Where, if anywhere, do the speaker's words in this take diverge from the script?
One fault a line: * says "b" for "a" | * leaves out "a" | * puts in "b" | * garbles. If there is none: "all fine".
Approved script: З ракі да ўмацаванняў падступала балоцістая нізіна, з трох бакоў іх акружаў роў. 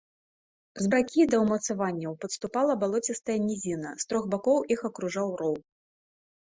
all fine